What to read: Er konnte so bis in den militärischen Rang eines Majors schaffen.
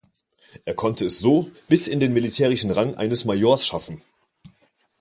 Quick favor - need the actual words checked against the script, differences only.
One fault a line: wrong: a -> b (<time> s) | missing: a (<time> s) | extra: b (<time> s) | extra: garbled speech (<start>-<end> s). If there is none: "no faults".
extra: es (1.1 s)